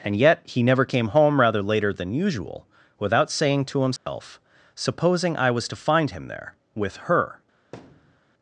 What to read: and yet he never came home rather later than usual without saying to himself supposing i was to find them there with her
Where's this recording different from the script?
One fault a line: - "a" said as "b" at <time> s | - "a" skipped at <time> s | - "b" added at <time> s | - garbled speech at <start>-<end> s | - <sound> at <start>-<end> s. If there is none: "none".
- dropout at 4.0-4.1 s
- "them" said as "him" at 6.1 s
- thud at 7.7-8.2 s